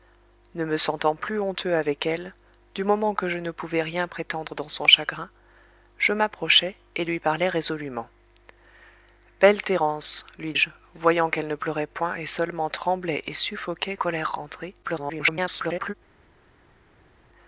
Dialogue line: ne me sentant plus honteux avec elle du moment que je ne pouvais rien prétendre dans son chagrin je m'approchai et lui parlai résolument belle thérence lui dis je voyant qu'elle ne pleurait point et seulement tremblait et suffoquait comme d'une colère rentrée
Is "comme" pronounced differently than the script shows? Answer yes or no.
yes